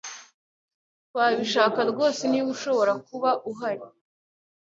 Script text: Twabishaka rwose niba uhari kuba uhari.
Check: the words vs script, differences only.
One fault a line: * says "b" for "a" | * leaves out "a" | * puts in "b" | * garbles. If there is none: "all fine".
* says "ushobora" for "uhari"